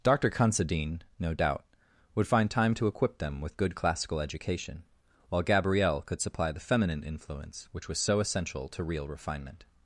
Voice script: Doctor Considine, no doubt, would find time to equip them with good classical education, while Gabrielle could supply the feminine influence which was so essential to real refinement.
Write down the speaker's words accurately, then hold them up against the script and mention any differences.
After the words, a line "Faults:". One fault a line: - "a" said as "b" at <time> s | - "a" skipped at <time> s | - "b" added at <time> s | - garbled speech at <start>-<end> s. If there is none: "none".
Doctor Considine, no doubt, would find time to equip them with good classical education, while Gabrielle could supply the feminine influence which was so essential to real refinement.
Faults:
none